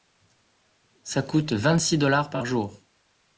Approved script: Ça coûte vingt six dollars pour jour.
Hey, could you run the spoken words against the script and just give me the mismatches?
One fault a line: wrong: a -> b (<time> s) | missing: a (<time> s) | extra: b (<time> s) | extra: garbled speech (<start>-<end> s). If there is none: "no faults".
wrong: pour -> par (2.3 s)